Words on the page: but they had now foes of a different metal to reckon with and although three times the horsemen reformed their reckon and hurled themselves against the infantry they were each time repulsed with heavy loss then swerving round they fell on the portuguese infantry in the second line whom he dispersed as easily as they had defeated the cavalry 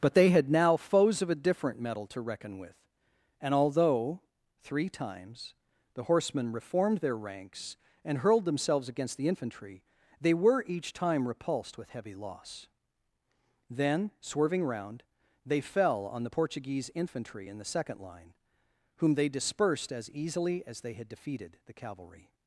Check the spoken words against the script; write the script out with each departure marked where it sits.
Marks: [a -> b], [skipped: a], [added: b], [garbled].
but they had now foes of a different metal to reckon with and although three times the horsemen reformed their [reckon -> ranks] and hurled themselves against the infantry they were each time repulsed with heavy loss then swerving round they fell on the portuguese infantry in the second line whom [he -> they] dispersed as easily as they had defeated the cavalry